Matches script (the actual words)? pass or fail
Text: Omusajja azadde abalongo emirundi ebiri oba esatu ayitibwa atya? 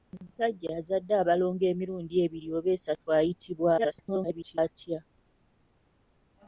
fail